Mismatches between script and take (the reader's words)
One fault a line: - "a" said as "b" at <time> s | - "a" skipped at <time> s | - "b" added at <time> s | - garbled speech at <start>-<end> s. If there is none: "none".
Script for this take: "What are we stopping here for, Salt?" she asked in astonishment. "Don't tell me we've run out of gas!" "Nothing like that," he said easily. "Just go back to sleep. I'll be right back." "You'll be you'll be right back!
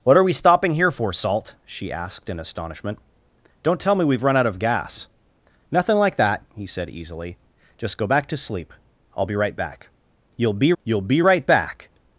none